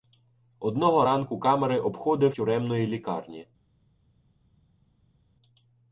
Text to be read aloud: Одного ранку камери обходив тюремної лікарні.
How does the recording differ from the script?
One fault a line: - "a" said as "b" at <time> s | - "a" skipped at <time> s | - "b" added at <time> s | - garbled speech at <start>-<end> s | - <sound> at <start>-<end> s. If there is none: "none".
none